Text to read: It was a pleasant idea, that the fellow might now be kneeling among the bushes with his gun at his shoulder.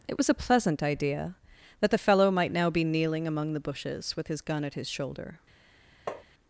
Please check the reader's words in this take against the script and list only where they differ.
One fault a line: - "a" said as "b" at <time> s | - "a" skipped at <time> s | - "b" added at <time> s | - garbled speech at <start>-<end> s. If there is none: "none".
none